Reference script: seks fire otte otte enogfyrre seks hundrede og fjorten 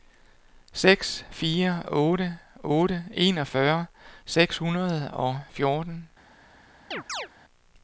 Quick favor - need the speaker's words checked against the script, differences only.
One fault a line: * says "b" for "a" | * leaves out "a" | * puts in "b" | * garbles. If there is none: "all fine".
all fine